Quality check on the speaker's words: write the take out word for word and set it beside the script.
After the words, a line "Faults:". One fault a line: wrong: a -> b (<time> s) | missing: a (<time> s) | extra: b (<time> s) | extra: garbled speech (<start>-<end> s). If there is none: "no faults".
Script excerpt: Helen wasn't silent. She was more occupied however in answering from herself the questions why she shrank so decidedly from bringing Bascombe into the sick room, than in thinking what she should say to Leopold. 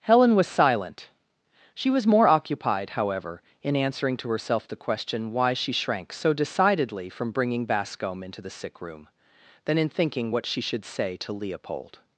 Helen was silent. She was more occupied however in answering to herself the question why she shrank so decidedly from bringing Bascombe into the sick room, than in thinking what she should say to Leopold.
Faults:
wrong: wasn't -> was (0.3 s)
wrong: from -> to (4.2 s)
wrong: questions -> question (4.8 s)